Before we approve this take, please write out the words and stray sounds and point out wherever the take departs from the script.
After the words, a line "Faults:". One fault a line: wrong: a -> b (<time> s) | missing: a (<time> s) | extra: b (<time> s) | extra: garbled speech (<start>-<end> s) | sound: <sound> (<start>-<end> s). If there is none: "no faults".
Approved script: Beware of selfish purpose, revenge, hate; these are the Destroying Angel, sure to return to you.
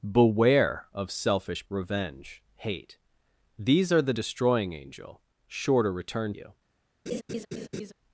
Beware of selfish revenge, hate; these are the Destroying Angel, sure to return you.
Faults:
missing: purpose (1.7 s)
missing: to (6.3 s)
sound: laugh (7.1-7.9 s)